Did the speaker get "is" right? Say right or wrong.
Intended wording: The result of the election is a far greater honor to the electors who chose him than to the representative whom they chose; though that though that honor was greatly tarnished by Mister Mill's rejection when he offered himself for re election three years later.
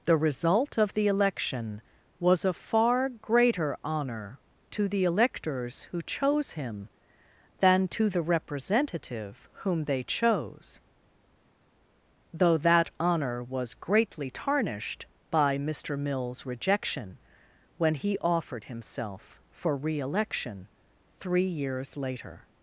wrong